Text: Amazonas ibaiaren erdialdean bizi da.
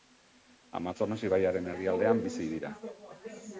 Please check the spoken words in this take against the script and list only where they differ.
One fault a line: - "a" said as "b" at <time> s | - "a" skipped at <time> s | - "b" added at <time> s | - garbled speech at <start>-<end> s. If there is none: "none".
- "da" said as "dira" at 2.6 s